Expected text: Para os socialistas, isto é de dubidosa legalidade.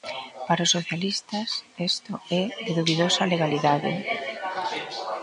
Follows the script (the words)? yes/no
yes